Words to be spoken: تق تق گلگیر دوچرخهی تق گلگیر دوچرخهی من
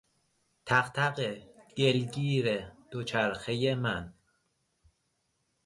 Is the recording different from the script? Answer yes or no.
yes